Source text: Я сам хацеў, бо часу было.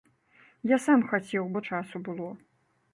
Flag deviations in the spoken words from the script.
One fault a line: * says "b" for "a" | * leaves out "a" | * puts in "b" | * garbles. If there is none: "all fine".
all fine